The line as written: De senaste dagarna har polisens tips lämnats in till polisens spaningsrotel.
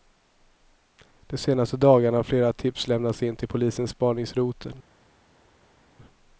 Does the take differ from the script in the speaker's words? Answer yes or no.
yes